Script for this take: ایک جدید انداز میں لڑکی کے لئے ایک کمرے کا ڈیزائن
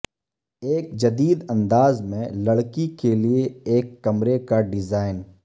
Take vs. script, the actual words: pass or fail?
pass